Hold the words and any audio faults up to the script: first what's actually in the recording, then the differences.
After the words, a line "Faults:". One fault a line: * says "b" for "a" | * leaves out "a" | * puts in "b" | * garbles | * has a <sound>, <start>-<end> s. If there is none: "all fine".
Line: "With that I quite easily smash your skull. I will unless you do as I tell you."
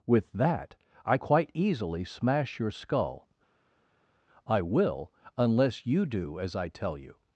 "With that I quite easily smash your skull. I will unless you do as I tell you."
Faults:
all fine